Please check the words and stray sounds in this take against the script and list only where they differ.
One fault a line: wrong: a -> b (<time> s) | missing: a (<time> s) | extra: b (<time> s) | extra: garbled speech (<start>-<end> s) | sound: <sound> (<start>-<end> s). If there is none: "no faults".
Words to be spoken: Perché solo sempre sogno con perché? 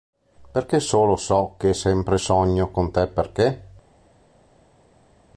extra: so che (1.1 s)
extra: te (2.9 s)